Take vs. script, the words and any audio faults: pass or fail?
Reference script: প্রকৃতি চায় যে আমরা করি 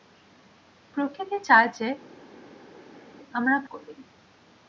pass